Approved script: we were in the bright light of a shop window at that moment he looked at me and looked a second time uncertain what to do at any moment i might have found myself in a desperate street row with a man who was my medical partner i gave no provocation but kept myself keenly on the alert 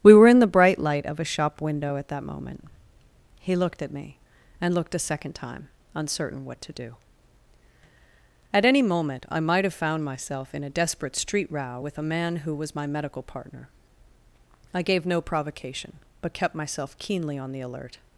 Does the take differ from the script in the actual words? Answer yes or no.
no